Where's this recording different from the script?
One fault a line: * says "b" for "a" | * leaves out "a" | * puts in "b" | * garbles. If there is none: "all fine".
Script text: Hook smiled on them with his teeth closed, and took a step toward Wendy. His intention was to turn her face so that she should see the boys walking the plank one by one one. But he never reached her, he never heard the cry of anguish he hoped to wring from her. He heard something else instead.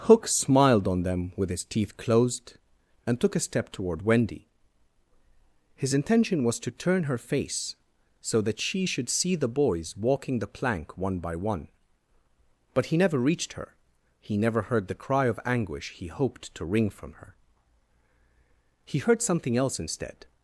* leaves out "one"